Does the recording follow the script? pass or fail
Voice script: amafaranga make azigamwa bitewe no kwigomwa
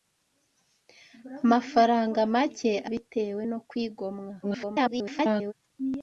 fail